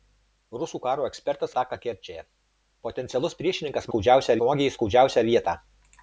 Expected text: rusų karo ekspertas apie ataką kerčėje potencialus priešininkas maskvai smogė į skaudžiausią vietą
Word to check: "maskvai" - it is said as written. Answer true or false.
false